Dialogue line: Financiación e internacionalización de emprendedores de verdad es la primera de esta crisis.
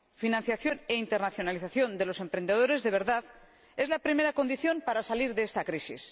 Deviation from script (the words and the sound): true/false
true